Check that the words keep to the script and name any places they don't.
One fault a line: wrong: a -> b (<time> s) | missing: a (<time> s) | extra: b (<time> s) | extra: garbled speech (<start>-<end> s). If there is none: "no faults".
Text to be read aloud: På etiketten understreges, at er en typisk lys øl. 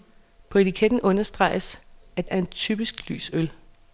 no faults